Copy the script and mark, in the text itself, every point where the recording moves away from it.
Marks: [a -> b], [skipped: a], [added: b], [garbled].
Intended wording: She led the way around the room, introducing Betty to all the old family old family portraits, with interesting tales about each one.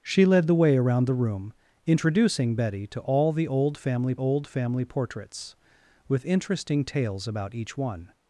She led the way around the room, introducing Betty to all the old family old family portraits, with interesting tales about each one.